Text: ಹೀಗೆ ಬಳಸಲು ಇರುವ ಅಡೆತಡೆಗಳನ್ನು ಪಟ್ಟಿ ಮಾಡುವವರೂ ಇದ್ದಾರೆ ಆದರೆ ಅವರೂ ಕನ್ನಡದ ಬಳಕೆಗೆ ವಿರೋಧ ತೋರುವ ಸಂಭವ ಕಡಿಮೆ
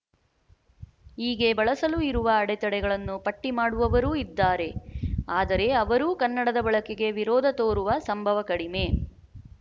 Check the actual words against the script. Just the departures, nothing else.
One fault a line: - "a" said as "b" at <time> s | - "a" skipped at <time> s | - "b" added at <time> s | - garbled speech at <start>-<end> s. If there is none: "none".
none